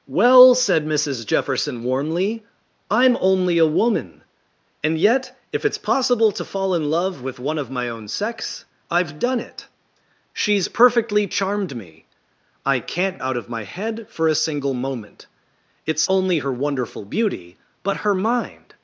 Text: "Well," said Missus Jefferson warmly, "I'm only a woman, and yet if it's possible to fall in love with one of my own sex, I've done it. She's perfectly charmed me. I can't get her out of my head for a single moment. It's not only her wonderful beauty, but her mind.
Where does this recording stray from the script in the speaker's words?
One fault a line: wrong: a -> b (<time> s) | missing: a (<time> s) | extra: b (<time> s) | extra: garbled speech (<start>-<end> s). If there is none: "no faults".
missing: get her (13.2 s)
missing: not (16.1 s)